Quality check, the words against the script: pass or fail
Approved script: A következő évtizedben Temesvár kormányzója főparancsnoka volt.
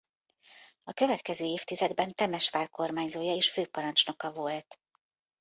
fail